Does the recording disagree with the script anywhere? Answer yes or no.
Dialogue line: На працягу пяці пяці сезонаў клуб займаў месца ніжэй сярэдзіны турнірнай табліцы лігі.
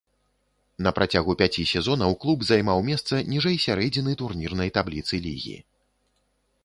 yes